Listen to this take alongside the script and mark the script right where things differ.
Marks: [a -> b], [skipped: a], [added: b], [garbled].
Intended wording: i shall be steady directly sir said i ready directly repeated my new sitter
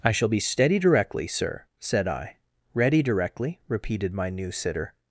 i shall be steady directly sir said i ready directly repeated my new sitter